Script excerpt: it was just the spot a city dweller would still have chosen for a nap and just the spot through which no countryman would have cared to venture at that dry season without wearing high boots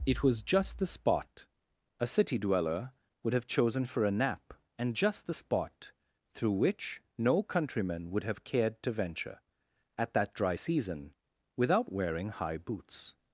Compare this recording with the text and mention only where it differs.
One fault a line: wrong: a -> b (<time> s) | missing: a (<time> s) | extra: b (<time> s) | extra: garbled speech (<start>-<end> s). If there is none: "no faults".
missing: still (3.3 s)